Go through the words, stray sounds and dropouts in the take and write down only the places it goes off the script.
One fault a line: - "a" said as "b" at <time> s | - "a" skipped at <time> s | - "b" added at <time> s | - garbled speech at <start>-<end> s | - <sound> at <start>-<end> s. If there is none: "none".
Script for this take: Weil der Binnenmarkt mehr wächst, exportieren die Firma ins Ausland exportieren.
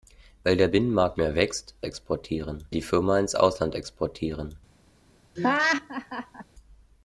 - laugh at 5.4-6.4 s